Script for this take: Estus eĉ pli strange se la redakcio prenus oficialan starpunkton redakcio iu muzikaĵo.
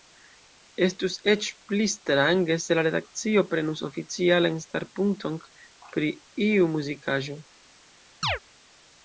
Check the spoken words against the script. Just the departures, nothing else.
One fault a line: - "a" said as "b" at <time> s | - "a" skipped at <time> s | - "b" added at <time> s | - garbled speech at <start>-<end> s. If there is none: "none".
- "redakcio" said as "pri" at 5.9 s